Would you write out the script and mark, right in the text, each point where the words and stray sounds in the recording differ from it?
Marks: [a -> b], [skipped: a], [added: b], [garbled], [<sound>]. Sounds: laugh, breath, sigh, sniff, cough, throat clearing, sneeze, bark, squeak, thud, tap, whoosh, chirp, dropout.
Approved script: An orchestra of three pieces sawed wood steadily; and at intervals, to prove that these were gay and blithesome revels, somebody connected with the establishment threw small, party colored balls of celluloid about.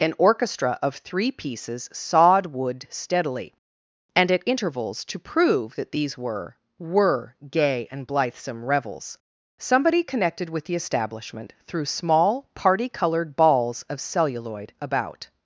An orchestra of three pieces sawed wood steadily; and at intervals, to prove that these were [added: were] gay and blithesome revels, somebody connected with the establishment threw small, party colored balls of celluloid about.